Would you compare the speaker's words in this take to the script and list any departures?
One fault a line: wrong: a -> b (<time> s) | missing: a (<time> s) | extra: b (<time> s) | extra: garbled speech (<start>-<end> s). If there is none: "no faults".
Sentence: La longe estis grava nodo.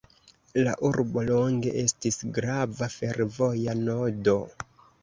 extra: urbo (0.9 s)
extra: fervoja (3.0 s)